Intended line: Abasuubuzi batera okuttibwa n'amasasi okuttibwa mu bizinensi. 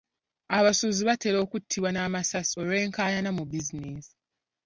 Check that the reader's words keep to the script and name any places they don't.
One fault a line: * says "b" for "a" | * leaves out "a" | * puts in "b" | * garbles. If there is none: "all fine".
* says "olw'enkaayana" for "okuttibwa"